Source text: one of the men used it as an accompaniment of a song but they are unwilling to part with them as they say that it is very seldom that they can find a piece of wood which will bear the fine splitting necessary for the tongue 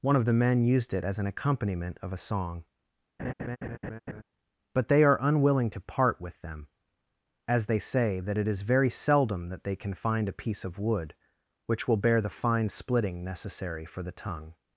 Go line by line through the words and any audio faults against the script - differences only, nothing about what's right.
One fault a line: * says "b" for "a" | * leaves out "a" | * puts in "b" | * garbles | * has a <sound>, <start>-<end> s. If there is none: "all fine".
* has a laugh, 3.2-4.2 s